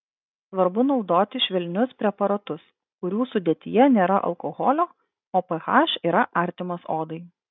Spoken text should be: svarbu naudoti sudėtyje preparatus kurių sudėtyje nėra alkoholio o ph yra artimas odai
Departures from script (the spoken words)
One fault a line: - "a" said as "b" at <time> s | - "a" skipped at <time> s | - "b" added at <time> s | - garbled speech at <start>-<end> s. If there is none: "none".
- "sudėtyje" said as "švelnius" at 1.5 s